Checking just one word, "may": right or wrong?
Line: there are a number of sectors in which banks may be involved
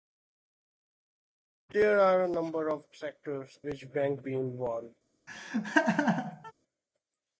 wrong